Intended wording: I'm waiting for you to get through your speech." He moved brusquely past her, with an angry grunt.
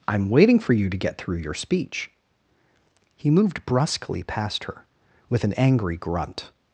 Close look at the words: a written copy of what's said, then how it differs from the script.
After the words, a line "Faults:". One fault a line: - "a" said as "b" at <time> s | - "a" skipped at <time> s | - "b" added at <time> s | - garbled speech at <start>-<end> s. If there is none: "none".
I'm waiting for you to get through your speech." He moved brusquely past her, with an angry grunt.
Faults:
none